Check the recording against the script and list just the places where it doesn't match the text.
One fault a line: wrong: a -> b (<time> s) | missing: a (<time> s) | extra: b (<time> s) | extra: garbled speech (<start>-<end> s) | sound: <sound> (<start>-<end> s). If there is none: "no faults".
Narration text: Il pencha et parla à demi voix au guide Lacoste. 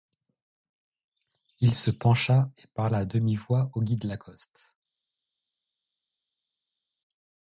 extra: se (1.8 s)